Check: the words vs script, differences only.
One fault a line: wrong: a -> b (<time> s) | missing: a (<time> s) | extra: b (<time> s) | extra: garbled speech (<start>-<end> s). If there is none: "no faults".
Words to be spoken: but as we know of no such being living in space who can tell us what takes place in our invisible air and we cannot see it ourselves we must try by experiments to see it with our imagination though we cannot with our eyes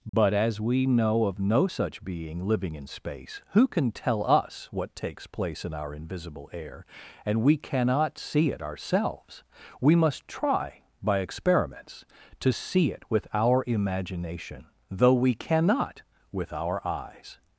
no faults